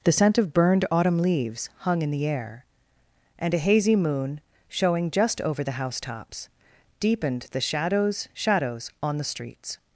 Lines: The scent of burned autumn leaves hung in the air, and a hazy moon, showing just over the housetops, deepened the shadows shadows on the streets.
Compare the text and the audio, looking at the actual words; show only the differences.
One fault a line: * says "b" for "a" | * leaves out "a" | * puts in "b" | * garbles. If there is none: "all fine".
all fine